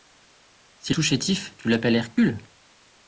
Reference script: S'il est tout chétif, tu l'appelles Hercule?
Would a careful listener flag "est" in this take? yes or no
yes